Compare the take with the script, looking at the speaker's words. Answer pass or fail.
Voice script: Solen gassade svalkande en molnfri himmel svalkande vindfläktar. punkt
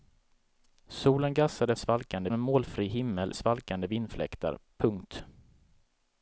pass